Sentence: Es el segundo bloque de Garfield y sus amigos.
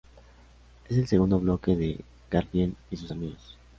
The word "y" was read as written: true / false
true